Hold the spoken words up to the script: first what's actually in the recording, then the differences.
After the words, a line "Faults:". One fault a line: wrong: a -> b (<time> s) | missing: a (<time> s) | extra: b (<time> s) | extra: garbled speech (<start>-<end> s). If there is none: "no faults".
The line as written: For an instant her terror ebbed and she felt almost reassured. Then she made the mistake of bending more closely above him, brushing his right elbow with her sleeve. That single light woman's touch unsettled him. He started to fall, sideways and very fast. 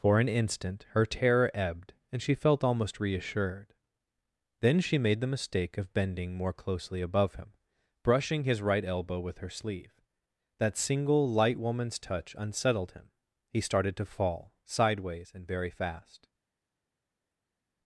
For an instant her terror ebbed and she felt almost reassured. Then she made the mistake of bending more closely above him, brushing his right elbow with her sleeve. That single light woman's touch unsettled him. He started to fall, sideways and very fast.
Faults:
no faults